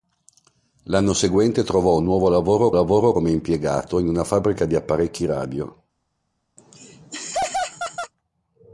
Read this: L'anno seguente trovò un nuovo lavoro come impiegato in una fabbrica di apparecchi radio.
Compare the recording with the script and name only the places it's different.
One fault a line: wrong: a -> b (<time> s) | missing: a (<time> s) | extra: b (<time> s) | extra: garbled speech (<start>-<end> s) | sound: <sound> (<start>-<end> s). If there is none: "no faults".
extra: lavoro (2.7 s)
sound: laugh (6.6-8.1 s)